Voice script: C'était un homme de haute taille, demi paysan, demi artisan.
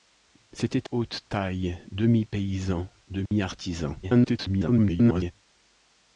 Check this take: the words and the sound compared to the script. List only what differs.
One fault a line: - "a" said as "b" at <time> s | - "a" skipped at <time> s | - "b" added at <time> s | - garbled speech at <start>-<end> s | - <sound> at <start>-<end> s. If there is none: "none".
- "un homme de" skipped at 0.9 s
- dropout at 3.3-3.3 s
- garbled speech at 4.0-5.3 s